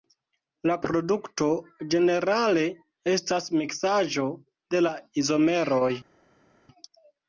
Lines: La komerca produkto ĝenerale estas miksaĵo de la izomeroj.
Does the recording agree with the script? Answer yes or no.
no